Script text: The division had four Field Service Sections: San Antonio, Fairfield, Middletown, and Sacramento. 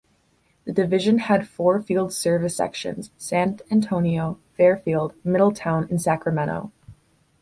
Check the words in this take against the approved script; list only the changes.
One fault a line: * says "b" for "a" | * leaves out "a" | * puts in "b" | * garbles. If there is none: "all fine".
all fine